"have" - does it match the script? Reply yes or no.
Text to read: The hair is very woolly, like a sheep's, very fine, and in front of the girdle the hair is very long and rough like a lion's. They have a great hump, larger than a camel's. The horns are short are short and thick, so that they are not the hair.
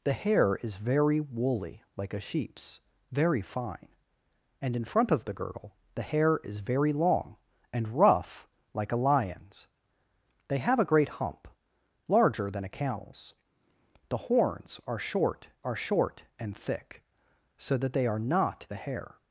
yes